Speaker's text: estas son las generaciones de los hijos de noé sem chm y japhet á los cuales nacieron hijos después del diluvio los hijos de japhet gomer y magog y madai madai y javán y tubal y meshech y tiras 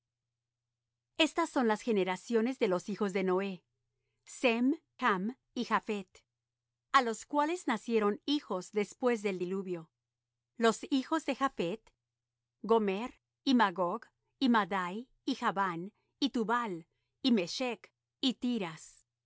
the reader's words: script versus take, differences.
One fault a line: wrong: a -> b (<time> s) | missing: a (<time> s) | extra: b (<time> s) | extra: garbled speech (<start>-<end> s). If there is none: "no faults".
missing: madai (15.1 s)